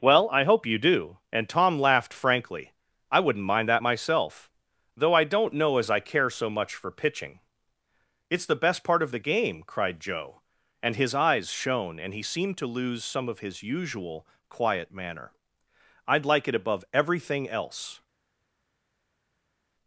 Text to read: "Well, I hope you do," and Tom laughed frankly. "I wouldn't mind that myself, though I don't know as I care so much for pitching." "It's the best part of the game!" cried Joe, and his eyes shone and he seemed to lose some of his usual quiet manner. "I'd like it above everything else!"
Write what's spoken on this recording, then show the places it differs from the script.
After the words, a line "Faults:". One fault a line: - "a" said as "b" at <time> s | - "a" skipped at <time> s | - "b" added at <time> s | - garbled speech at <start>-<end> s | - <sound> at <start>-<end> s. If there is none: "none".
"Well, I hope you do," and Tom laughed frankly. "I wouldn't mind that myself, though I don't know as I care so much for pitching." "It's the best part of the game!" cried Joe, and his eyes shone and he seemed to lose some of his usual quiet manner. "I'd like it above everything else!"
Faults:
none